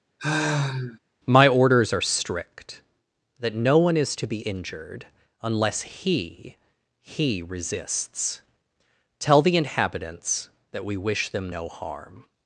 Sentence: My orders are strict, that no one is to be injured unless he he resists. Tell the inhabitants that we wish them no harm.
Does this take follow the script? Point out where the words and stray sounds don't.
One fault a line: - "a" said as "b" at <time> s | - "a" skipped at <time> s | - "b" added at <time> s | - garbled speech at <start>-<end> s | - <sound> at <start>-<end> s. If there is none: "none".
- sigh at 0.2-1.0 s